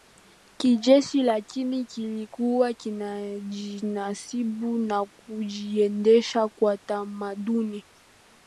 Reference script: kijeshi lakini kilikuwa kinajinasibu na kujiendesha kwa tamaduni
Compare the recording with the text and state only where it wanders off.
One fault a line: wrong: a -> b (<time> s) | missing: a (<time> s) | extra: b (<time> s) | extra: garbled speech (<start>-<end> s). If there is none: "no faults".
no faults